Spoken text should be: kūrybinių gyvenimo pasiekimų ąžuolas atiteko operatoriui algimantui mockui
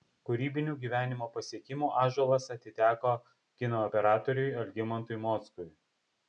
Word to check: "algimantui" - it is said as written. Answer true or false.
true